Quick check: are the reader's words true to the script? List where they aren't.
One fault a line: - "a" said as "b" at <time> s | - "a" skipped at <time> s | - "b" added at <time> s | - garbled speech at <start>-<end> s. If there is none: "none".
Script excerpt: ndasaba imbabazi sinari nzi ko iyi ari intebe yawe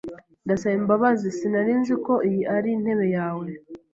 none